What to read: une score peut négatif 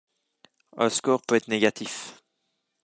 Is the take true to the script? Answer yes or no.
no